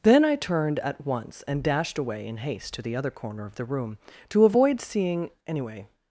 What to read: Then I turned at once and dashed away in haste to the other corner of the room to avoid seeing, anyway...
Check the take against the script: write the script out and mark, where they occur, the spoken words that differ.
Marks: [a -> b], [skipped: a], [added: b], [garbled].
Then I turned at once and dashed away in haste to the other corner of the room to avoid seeing, anyway...